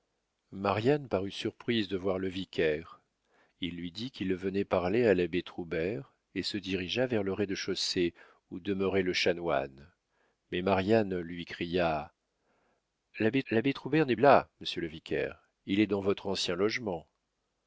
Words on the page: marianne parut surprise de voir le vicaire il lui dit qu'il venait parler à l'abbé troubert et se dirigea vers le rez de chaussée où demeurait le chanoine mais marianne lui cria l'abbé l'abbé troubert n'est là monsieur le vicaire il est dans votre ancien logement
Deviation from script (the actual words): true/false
false